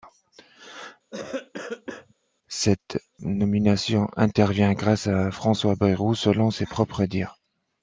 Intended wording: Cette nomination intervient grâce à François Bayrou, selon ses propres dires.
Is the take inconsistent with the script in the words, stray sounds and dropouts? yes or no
yes